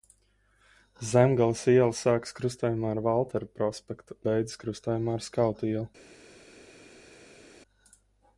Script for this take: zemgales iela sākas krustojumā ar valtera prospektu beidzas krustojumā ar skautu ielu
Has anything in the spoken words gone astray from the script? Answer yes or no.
no